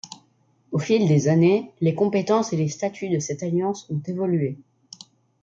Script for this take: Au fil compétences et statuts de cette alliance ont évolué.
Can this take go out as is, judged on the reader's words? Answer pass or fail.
fail